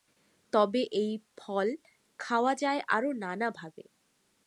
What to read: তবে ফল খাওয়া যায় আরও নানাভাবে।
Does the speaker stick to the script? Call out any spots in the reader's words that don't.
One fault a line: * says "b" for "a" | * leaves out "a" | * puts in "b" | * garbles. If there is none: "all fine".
* puts in "এই"